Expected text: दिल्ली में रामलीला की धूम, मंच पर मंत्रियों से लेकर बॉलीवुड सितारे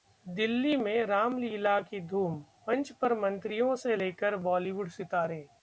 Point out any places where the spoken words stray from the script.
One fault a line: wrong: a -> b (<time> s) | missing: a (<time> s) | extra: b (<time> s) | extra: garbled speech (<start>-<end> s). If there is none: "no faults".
no faults